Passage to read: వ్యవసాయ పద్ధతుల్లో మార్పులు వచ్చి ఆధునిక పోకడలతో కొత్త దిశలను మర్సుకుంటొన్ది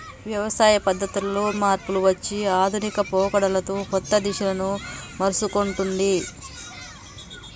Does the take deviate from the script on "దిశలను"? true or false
false